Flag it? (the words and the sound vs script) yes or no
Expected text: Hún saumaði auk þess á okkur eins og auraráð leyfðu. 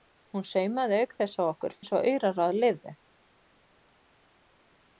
no